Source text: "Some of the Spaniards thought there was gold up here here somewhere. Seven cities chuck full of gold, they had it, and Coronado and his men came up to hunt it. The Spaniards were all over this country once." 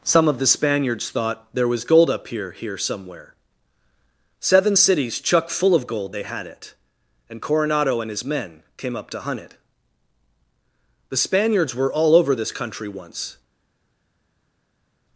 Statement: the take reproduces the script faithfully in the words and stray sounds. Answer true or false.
true